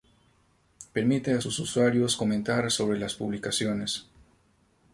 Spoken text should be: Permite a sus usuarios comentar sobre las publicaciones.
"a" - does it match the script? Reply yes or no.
yes